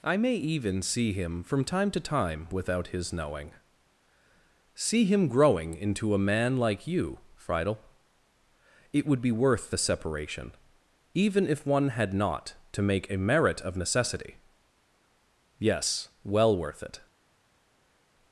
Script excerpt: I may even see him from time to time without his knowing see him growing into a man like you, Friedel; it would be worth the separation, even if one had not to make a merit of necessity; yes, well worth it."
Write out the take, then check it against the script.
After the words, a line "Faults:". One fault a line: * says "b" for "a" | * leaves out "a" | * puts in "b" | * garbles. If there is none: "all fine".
I may even see him from time to time without his knowing see him growing into a man like you, Friedel; it would be worth the separation, even if one had not to make a merit of necessity; yes, well worth it."
Faults:
all fine